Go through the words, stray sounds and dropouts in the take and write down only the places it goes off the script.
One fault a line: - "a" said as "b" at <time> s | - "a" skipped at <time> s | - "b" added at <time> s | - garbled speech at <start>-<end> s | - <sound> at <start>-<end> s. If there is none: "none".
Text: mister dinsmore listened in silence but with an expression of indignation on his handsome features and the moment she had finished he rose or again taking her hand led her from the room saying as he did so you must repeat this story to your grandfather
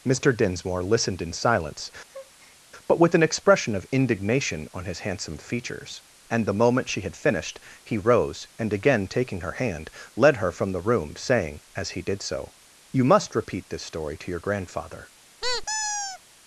- breath at 2.1-2.6 s
- "or" said as "and" at 8.6 s
- squeak at 15.4-16.2 s